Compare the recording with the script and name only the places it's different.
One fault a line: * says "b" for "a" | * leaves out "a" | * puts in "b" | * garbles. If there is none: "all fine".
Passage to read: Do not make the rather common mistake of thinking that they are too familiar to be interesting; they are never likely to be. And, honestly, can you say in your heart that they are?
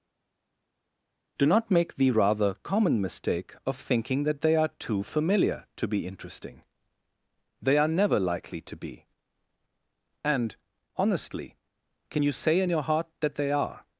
all fine